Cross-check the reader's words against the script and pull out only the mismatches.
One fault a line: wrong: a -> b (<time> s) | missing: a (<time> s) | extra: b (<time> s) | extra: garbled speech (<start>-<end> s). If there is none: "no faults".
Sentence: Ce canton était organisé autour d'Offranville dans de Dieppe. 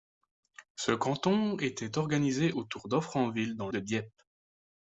no faults